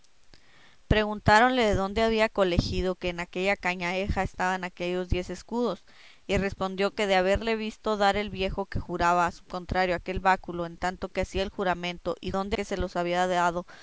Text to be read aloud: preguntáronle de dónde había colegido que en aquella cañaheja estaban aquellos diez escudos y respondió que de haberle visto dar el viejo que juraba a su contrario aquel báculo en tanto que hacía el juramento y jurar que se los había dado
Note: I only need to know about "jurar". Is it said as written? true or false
false